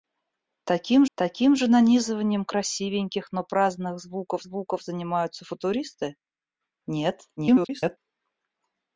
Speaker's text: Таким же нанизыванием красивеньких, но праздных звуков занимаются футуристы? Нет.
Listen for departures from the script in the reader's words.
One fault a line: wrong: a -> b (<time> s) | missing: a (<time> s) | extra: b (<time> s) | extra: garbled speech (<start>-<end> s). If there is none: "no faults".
extra: таким (1.1 s)
extra: звуков (4.4 s)
extra: garbled speech (7.4-8.0 s)